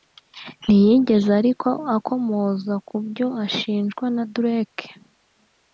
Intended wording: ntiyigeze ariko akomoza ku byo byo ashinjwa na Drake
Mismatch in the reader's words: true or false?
true